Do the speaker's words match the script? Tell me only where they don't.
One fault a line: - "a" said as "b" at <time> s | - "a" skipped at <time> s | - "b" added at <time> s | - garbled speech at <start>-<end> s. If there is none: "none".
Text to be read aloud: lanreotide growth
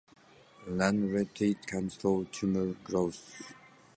- "can slow tumor" added at 1.7 s